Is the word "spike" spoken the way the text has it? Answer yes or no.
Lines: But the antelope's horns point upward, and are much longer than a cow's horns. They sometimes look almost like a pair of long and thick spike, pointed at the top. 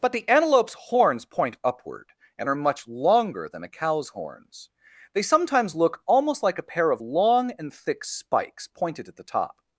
no